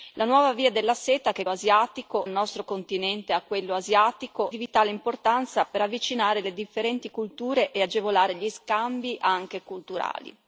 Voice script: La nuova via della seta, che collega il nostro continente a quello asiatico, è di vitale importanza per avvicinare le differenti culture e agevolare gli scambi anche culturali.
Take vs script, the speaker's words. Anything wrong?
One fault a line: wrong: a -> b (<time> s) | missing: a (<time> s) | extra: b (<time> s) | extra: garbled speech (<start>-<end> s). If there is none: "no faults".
wrong: collega -> asiatico (1.5 s)
missing: è (4.5 s)